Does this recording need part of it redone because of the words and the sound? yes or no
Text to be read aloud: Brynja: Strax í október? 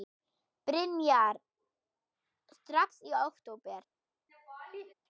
yes